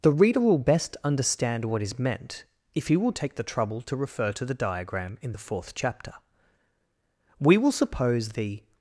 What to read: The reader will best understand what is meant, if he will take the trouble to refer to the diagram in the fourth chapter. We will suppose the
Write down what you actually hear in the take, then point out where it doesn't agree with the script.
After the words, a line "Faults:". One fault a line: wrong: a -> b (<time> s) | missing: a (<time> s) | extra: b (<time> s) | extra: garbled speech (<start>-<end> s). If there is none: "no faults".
The reader will best understand what is meant, if he will take the trouble to refer to the diagram in the fourth chapter. We will suppose the
Faults:
no faults